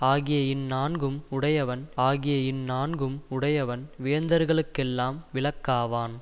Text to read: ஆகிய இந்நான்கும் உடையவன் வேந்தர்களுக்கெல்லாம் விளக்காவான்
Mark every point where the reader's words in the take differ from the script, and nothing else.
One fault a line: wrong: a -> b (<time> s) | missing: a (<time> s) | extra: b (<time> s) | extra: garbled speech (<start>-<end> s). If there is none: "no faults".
extra: ஆகிய இந்நான்கும் உடையவன் (2.0 s)